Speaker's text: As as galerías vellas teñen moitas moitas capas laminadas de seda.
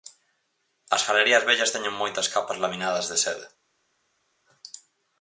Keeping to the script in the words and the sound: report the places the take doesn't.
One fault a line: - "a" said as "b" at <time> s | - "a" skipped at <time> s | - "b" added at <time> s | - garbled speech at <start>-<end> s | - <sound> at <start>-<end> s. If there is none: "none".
- "as" skipped at 1.1 s
- "moitas" skipped at 2.3 s